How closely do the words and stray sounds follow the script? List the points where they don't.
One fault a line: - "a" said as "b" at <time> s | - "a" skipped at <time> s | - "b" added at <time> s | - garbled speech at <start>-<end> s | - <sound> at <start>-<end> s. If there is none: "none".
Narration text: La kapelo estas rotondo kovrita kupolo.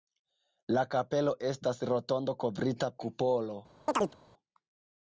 - chirp at 3.9-4.2 s